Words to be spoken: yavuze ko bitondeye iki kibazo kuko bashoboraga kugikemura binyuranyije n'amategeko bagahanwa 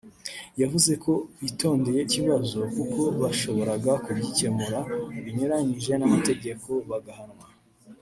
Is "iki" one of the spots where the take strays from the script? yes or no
yes